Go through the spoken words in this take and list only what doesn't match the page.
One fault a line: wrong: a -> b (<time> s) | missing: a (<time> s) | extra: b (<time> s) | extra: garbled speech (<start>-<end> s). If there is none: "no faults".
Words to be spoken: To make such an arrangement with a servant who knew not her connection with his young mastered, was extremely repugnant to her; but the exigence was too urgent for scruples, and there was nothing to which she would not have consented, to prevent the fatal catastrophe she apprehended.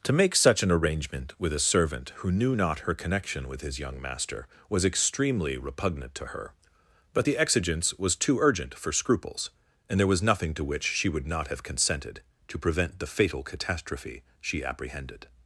wrong: mastered -> master (4.0 s)